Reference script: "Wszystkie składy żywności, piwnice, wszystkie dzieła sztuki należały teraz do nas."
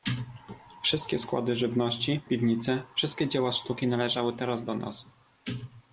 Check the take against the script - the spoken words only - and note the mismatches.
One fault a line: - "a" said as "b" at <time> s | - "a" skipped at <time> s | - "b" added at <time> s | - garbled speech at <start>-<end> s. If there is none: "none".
none